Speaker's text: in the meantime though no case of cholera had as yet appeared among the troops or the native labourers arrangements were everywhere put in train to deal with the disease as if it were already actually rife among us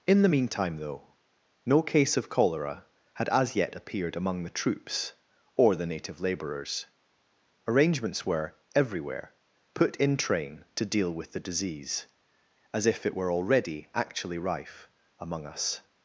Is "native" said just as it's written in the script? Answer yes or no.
yes